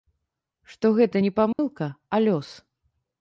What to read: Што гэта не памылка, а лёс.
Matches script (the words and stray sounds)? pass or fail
fail